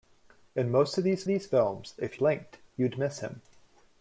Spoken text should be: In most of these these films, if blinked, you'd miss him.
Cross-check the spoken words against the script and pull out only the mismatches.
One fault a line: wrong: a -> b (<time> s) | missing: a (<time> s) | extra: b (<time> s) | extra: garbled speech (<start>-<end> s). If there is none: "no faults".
no faults